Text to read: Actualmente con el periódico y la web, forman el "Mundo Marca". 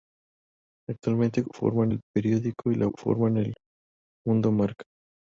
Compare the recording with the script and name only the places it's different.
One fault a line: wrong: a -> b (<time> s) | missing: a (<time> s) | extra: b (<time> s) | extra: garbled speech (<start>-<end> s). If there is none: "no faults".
wrong: con -> forman (1.5 s)
missing: web (2.9 s)